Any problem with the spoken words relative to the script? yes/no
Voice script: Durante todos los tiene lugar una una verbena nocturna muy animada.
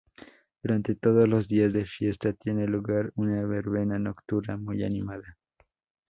yes